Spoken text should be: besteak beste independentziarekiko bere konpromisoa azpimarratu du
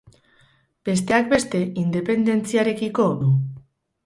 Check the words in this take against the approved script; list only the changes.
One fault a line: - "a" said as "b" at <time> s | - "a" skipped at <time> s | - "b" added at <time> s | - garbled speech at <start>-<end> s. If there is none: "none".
- "bere konpromisoa azpimarratu" skipped at 3.1 s